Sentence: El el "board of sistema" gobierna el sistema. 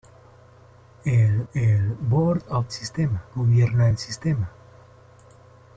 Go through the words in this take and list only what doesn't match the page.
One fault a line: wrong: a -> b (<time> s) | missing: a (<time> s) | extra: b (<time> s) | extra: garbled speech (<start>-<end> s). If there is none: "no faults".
no faults